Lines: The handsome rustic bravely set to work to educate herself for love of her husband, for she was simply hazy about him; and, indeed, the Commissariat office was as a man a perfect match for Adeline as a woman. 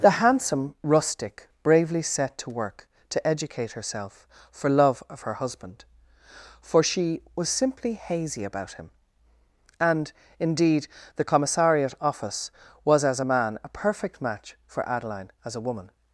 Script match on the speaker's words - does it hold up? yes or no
yes